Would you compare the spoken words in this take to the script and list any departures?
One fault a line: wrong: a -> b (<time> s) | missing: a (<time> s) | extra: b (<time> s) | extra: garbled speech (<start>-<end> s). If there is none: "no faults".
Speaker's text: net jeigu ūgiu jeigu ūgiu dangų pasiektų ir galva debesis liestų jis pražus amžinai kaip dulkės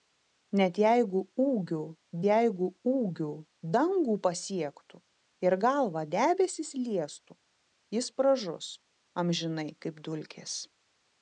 no faults